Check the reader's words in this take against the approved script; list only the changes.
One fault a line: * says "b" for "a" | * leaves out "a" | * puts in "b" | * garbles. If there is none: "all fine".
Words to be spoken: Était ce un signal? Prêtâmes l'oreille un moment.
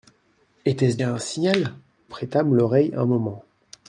all fine